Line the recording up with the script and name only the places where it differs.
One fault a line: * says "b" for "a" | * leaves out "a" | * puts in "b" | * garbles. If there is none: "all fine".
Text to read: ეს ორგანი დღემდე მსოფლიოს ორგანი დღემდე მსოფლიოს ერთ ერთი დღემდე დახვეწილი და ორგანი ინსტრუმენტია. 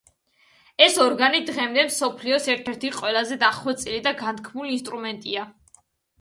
* leaves out "ორგანი დღემდე მსოფლიოს"
* says "ყველაზე" for "დღემდე"
* says "განთქმული" for "ორგანი"